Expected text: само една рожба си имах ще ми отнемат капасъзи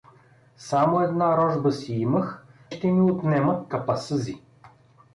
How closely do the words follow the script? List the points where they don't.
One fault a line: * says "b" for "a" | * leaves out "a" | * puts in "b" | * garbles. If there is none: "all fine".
all fine